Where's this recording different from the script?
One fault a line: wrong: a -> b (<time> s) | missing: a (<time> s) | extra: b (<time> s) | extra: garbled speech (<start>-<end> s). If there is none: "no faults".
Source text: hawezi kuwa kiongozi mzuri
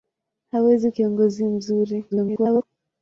missing: kuwa (0.9 s)
extra: garbled speech (2.1-2.6 s)